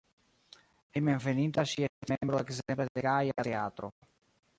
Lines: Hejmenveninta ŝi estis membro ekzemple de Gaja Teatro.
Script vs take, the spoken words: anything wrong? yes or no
no